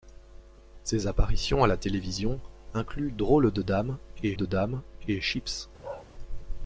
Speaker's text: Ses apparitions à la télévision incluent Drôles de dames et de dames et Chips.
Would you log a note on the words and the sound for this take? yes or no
yes